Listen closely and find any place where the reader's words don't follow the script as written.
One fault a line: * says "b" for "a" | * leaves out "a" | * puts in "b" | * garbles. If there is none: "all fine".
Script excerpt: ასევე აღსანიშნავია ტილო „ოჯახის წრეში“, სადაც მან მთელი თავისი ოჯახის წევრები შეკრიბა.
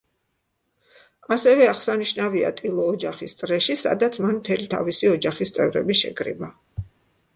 all fine